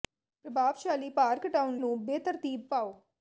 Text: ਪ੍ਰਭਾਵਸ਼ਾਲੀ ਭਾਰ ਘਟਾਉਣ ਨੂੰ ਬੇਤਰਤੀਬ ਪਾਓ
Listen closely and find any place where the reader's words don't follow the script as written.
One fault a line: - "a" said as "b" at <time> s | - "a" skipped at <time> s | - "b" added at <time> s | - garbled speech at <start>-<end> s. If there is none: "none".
none